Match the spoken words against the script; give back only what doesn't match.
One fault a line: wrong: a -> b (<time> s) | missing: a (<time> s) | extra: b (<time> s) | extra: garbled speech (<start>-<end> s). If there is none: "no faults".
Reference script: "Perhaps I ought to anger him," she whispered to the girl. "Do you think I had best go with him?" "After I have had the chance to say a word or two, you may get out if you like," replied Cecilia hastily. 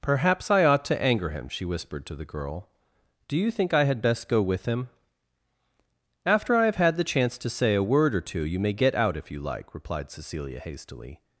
no faults